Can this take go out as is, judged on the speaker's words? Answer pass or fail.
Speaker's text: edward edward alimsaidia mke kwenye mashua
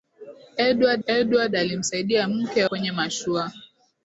pass